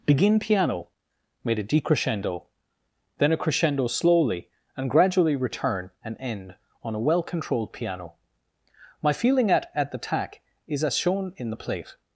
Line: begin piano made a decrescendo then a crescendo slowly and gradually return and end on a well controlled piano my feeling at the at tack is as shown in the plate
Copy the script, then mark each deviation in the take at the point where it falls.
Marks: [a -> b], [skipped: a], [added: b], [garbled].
begin piano made a decrescendo then a crescendo slowly and gradually return and end on a well controlled piano my feeling at [added: at] the [skipped: at] tack is as shown in the plate